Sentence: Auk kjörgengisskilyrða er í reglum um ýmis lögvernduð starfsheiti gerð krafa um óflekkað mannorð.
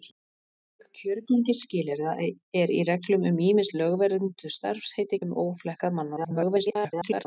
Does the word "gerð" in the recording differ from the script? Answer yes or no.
yes